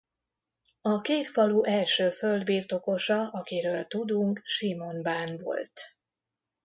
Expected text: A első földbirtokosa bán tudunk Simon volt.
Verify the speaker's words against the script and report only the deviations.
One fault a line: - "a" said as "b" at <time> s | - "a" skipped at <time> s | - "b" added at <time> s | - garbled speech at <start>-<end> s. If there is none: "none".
- "két falu" added at 1.0 s
- "bán" said as "akiről" at 3.3 s
- "bán" added at 5.0 s